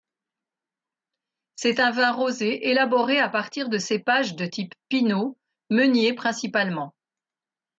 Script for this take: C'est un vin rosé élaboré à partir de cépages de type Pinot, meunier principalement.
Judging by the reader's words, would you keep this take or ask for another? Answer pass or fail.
pass